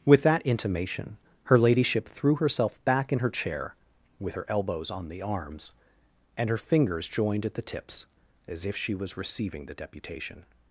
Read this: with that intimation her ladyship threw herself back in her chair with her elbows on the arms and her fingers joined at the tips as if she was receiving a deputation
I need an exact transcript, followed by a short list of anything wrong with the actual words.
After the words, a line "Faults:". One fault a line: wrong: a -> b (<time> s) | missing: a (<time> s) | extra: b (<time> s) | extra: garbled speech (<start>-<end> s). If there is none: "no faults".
with that intimation her ladyship threw herself back in her chair with her elbows on the arms and her fingers joined at the tips as if she was receiving the deputation
Faults:
wrong: a -> the (9.7 s)